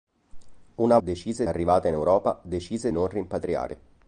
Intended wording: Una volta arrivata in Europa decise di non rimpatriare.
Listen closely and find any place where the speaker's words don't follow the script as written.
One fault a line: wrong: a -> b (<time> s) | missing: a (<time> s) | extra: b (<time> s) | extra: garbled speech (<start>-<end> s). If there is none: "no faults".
wrong: volta -> decise (1.0 s)
missing: di (2.9 s)